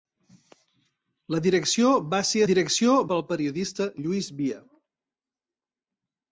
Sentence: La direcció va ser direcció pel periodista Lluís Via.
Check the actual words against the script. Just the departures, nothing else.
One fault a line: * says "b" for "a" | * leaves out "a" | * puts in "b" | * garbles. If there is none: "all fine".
all fine